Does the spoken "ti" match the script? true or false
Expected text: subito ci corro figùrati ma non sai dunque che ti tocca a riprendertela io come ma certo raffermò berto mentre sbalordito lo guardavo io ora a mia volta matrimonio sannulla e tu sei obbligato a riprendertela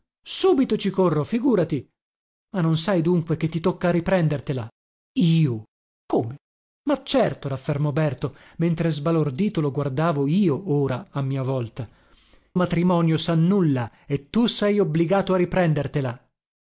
true